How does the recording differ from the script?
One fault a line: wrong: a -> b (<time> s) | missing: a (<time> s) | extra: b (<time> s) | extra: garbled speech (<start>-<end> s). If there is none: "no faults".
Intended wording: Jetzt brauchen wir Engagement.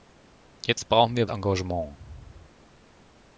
no faults